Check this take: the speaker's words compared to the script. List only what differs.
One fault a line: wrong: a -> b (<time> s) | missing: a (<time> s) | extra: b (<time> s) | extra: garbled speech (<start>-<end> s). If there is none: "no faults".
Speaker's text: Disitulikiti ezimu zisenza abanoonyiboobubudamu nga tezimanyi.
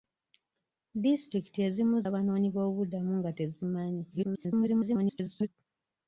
missing: zisenza (2.0 s)
extra: garbled speech (4.1-5.5 s)